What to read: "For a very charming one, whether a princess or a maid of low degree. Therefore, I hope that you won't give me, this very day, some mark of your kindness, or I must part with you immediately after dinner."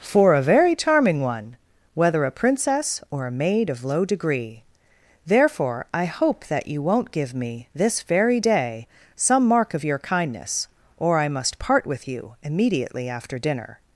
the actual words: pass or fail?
pass